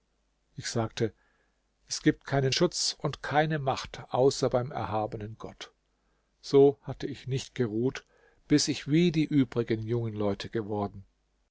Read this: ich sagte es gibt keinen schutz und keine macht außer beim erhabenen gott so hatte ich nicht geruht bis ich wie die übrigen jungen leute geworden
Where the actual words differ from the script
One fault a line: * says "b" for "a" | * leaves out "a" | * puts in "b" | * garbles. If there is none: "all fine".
all fine